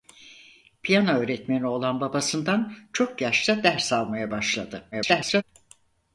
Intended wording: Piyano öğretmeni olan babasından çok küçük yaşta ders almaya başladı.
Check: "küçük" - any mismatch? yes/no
yes